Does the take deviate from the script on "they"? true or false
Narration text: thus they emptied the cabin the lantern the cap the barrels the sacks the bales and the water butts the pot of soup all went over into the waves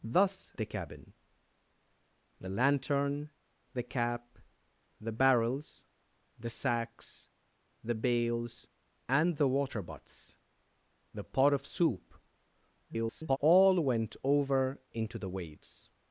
true